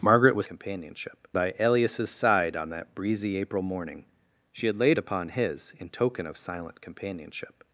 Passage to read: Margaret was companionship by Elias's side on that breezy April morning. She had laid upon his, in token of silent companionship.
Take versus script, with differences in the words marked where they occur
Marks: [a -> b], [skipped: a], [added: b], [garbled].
Margaret was companionship by Elias's side on that breezy April morning. She had laid upon his, in token of silent companionship.